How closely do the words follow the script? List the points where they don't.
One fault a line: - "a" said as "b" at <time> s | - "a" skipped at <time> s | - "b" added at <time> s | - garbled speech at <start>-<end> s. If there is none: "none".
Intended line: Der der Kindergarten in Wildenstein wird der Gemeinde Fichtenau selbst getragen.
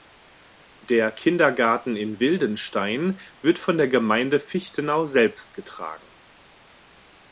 - "der" skipped at 1.1 s
- "von" added at 3.6 s